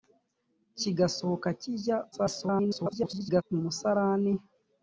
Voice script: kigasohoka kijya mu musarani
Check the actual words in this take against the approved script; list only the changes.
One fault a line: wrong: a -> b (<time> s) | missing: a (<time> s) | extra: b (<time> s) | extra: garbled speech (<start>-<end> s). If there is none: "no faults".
extra: garbled speech (2.1-3.4 s)